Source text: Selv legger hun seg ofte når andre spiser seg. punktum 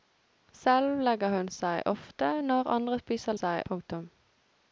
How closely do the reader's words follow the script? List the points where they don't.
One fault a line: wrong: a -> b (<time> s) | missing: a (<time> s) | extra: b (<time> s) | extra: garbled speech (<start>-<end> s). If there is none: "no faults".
no faults